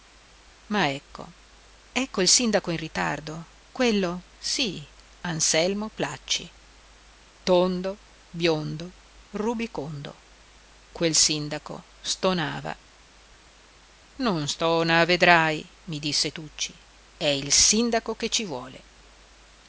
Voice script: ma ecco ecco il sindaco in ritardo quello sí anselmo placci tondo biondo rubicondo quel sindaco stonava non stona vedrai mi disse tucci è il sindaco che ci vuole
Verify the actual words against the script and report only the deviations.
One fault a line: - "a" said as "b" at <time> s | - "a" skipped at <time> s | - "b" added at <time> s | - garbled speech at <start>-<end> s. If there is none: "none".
none